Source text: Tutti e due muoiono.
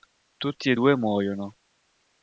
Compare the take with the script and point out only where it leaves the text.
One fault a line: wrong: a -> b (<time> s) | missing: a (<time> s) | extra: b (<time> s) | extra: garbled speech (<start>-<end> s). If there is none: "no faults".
no faults